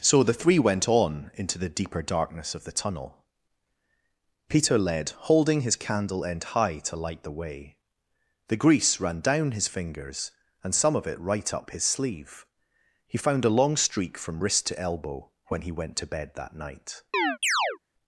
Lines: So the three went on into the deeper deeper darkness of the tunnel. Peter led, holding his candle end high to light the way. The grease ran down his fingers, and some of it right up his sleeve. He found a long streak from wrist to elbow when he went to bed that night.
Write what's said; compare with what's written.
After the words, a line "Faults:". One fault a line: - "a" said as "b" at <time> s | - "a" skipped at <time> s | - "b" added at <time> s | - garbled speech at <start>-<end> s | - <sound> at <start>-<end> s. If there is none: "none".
So the three went on into the deeper darkness of the tunnel. Peter led, holding his candle end high to light the way. The grease ran down his fingers, and some of it right up his sleeve. He found a long streak from wrist to elbow when he went to bed that night.
Faults:
- "deeper" skipped at 2.0 s
- chirp at 17.1-17.8 s